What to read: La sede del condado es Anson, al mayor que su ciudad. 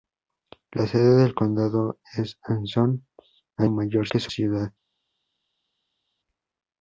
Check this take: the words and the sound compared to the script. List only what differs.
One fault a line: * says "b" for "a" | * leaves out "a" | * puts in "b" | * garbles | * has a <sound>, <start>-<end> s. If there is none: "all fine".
all fine